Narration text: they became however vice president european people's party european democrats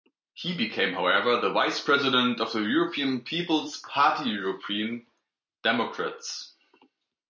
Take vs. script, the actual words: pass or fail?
fail